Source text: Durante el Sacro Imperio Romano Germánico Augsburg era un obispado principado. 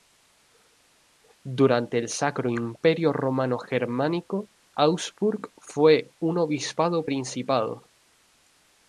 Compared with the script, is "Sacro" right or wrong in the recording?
right